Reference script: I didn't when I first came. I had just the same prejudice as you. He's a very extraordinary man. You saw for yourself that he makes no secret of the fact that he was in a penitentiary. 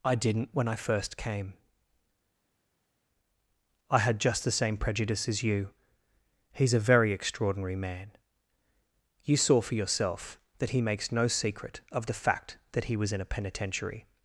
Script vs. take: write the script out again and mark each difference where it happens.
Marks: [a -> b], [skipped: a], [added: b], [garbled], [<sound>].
I didn't when I first came. I had just the same prejudice as you. He's a very extraordinary man. You saw for yourself that he makes no secret of the fact that he was in a penitentiary.